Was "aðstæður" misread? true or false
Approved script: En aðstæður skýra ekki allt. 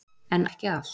true